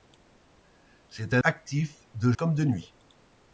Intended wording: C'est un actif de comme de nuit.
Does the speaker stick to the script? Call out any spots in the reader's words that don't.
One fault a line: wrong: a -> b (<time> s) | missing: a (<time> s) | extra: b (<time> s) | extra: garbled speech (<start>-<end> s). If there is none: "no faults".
no faults